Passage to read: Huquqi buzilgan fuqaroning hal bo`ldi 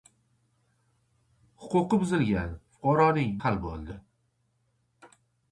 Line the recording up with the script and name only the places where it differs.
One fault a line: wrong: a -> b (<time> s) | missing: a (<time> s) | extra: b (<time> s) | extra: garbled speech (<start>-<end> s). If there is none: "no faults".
no faults